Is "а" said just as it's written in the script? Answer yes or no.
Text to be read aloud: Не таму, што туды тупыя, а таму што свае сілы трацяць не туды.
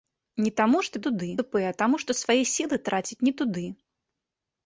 yes